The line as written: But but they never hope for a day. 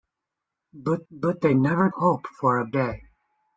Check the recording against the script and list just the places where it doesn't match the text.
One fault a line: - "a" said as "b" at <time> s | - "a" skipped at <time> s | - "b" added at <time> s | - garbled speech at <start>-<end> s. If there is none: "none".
none